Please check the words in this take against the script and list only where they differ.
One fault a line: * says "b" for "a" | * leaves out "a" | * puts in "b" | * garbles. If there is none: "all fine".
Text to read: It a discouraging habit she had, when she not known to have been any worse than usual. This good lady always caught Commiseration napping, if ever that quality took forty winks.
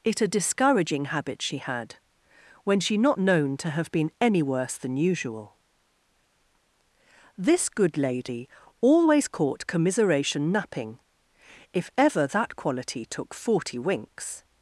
all fine